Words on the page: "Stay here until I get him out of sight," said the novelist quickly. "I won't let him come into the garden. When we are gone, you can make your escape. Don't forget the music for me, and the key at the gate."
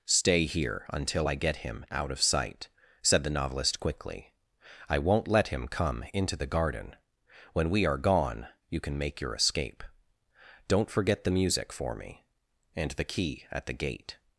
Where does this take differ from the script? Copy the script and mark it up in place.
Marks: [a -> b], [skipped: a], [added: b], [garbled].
"Stay here until I get him out of sight," said the novelist quickly. "I won't let him come into the garden. When we are gone, you can make your escape. Don't forget the music for me, and the key at the gate."